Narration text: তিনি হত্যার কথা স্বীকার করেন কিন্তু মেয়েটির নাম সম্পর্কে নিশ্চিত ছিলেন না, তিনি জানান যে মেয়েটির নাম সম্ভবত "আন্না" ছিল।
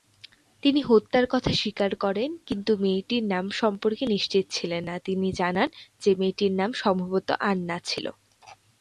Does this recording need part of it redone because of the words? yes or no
no